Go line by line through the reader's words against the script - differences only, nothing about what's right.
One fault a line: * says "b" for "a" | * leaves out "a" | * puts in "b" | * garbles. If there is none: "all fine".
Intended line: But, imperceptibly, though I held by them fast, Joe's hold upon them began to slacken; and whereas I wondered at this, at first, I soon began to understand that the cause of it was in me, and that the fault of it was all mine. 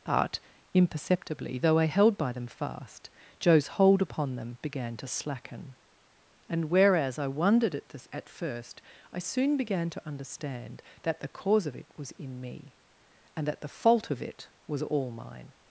all fine